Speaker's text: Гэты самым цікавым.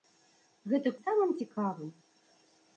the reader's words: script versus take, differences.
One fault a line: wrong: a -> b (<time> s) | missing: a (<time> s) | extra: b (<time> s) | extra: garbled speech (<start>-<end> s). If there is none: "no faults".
no faults